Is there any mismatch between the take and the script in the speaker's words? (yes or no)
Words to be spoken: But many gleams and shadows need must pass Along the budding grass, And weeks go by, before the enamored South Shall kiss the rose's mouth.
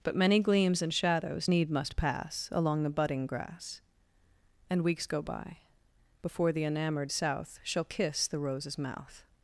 no